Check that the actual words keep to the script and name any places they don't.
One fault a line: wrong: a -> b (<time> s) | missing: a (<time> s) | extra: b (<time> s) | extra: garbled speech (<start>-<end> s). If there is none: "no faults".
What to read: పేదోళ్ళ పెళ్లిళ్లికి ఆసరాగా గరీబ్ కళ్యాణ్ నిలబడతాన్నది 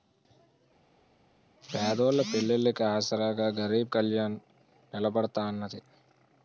no faults